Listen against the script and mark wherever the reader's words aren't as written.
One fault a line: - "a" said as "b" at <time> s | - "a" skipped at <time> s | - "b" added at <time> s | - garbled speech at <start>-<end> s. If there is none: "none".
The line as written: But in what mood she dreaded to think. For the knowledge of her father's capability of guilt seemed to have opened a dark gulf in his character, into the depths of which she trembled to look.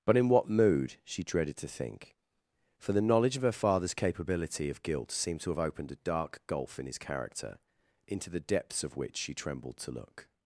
none